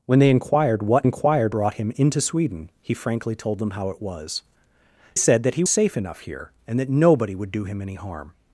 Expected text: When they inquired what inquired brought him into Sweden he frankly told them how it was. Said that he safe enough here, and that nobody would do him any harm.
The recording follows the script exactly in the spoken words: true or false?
true